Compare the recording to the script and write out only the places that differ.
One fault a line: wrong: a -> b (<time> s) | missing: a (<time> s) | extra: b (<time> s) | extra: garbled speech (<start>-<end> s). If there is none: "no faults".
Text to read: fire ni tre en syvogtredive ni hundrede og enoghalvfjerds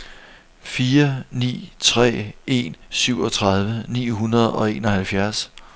no faults